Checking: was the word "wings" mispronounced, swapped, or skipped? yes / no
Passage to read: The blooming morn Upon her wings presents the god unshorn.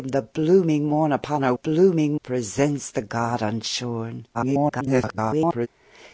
yes